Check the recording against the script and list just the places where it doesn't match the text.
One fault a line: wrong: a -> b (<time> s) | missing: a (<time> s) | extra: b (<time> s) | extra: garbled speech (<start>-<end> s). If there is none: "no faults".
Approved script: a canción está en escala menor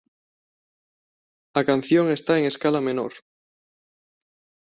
no faults